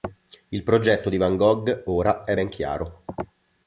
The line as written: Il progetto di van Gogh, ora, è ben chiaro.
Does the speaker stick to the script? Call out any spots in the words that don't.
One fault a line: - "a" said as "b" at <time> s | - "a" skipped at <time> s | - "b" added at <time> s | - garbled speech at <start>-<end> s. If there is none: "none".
none